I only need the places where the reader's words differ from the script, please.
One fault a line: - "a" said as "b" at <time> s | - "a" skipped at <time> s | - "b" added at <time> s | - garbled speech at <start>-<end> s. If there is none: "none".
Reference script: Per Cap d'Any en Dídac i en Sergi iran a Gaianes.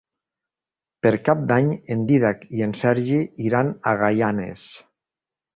none